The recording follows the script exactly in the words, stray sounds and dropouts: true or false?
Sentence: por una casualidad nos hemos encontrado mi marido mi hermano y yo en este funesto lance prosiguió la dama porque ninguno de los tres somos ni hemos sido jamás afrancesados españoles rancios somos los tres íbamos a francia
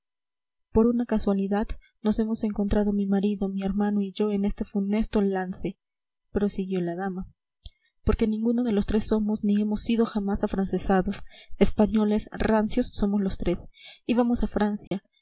false